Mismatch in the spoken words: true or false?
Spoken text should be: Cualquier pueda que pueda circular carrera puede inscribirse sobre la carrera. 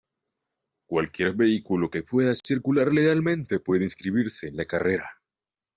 true